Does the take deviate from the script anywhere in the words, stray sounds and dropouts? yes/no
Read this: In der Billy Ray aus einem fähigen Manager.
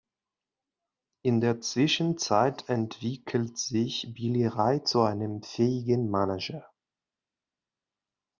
yes